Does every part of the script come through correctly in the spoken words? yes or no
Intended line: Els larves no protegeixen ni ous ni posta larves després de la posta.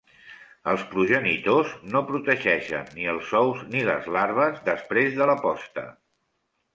no